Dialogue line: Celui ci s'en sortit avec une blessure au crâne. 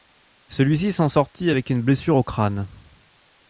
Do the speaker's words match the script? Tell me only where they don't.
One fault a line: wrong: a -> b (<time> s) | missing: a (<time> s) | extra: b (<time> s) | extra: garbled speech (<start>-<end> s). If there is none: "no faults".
no faults